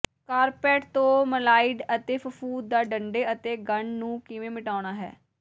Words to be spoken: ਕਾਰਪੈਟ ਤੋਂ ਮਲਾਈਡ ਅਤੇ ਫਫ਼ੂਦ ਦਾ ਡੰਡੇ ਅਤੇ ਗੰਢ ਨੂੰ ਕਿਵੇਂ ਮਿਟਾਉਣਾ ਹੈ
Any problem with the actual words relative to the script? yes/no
no